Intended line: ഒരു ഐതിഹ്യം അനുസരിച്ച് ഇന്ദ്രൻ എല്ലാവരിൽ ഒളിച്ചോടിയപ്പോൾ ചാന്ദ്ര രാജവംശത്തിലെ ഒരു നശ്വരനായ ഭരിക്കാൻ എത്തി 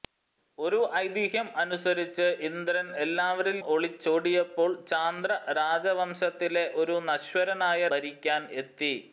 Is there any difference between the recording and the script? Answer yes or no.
no